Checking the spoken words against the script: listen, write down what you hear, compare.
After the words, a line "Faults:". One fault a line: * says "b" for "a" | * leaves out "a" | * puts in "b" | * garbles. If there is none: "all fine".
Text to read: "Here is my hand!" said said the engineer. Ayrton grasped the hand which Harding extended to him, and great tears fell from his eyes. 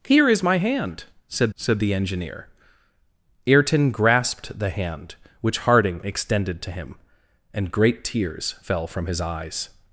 "Here is my hand!" said said the engineer. Ayrton grasped the hand which Harding extended to him, and great tears fell from his eyes.
Faults:
all fine